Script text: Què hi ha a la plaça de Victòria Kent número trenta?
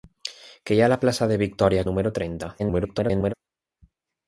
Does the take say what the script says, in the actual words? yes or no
no